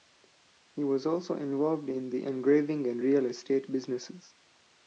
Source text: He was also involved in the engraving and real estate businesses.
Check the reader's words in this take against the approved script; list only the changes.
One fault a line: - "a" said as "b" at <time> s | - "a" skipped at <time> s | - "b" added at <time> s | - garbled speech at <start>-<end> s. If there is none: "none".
none